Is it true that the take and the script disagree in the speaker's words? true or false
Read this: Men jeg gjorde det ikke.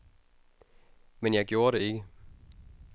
false